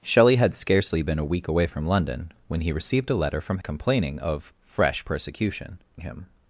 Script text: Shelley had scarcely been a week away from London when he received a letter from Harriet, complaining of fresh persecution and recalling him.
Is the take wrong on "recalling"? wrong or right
wrong